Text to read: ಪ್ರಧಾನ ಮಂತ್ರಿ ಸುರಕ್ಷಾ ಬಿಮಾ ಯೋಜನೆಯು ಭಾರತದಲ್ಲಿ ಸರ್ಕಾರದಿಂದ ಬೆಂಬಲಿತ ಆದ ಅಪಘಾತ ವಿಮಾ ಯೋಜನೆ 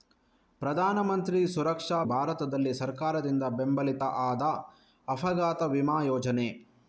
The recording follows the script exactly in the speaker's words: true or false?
false